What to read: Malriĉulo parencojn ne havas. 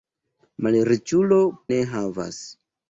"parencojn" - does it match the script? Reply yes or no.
no